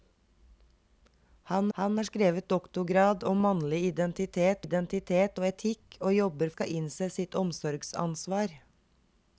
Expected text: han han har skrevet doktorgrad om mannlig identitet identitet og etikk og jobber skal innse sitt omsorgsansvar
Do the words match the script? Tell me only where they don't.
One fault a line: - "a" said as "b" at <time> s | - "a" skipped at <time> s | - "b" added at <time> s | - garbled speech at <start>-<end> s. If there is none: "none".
none